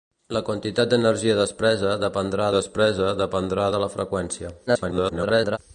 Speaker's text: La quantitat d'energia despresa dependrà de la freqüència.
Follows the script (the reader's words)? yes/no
no